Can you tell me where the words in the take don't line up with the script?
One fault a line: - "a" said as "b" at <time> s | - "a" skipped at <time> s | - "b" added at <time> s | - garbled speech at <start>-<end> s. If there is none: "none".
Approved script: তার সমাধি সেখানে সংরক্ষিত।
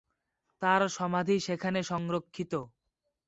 none